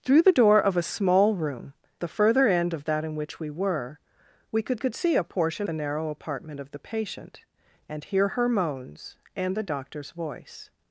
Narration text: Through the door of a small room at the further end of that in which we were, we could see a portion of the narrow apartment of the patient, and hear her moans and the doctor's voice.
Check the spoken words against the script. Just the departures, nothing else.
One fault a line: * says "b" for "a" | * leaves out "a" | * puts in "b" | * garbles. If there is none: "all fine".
* leaves out "at"
* puts in "could"
* leaves out "of"